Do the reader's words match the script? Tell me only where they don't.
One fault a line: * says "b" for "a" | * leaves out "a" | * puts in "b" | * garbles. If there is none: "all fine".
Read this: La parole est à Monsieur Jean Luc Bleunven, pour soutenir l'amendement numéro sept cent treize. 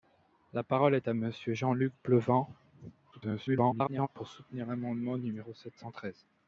* garbles